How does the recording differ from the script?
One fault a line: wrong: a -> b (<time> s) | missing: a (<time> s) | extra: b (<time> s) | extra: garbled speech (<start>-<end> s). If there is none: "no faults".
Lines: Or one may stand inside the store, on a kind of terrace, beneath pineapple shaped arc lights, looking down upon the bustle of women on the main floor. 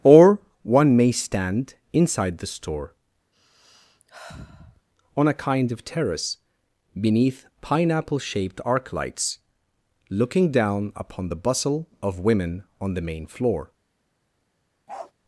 no faults